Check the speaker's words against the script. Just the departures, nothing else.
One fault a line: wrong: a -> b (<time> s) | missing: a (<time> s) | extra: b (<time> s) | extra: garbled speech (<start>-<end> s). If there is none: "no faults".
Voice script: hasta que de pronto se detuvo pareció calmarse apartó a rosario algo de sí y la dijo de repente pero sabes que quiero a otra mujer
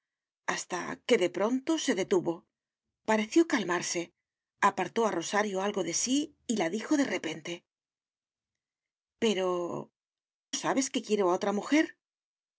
no faults